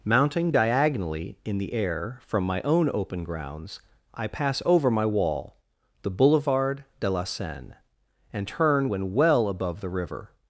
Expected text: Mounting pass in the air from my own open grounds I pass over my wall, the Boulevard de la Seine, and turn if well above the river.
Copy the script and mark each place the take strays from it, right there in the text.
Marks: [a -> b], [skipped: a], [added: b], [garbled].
Mounting [pass -> diagonally] in the air from my own open grounds I pass over my wall, the Boulevard de la Seine, and turn [if -> when] well above the river.